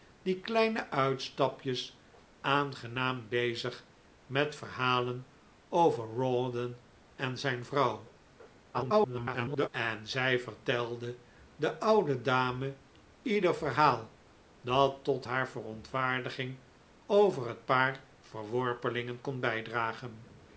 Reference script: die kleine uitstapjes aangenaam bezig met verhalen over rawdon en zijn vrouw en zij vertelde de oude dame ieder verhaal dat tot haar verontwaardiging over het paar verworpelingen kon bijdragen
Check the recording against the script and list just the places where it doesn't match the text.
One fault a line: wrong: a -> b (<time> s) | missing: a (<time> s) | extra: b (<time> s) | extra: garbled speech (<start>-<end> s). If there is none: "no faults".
extra: garbled speech (8.7-9.7 s)